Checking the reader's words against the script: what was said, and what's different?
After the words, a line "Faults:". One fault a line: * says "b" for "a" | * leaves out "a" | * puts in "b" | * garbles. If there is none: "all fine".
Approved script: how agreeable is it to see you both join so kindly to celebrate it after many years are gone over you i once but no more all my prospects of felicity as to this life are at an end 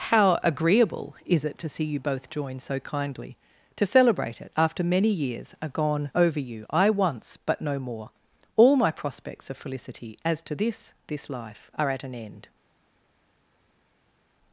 how agreeable is it to see you both join so kindly to celebrate it after many years are gone over you i once but no more all my prospects of felicity as to this this life are at an end
Faults:
* puts in "this"